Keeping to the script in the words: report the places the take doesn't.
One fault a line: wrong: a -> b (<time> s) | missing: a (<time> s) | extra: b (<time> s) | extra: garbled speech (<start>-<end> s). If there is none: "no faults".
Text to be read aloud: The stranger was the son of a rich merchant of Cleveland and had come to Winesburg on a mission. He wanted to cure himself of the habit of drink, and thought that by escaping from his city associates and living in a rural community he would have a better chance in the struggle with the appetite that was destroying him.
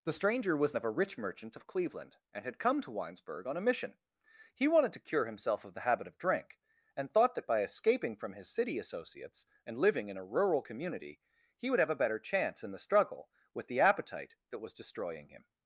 missing: the son (0.7 s)